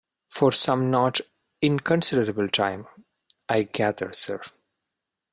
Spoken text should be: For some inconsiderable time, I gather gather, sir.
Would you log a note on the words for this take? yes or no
yes